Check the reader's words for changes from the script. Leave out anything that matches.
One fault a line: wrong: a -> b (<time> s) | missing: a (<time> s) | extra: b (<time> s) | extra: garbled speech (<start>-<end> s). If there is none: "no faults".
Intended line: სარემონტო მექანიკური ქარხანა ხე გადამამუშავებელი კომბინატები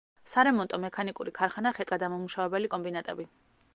no faults